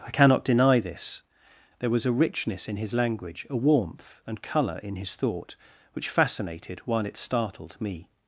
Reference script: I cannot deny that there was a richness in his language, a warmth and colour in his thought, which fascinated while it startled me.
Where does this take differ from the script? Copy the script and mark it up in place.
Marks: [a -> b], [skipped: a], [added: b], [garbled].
I cannot deny [that -> this] there was a richness in his language, a warmth and colour in his thought, which fascinated while it startled me.